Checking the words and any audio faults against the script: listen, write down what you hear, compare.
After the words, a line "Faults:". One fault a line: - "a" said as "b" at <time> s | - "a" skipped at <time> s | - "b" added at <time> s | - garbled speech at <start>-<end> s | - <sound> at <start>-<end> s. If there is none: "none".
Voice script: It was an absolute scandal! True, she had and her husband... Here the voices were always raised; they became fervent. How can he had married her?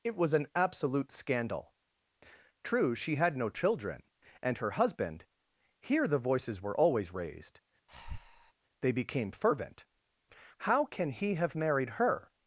It was an absolute scandal! True, she had no children, and her husband... Here the voices were always raised; they became fervent. How can he have married her?
Faults:
- "no children" added at 3.4 s
- breath at 7.9-8.5 s
- "had" said as "have" at 11.4 s